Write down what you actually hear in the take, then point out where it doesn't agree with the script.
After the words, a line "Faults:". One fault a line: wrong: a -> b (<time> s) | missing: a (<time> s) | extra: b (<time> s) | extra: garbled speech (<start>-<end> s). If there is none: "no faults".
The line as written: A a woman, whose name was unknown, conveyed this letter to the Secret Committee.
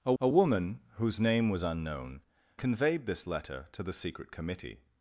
A a woman, whose name was unknown, conveyed this letter to the Secret Committee.
Faults:
no faults